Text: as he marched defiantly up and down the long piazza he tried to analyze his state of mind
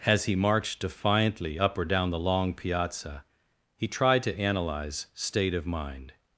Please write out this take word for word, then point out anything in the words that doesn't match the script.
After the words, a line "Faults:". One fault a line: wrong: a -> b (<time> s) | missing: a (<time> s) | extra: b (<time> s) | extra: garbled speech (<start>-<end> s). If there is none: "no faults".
as he marched defiantly up or down the long piazza he tried to analyze state of mind
Faults:
wrong: and -> or (1.8 s)
missing: his (5.1 s)